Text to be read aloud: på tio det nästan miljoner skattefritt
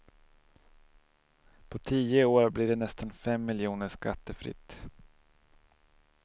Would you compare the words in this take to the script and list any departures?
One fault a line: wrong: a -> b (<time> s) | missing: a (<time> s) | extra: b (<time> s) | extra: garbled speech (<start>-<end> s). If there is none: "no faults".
extra: år blir (2.2 s)
extra: fem (3.1 s)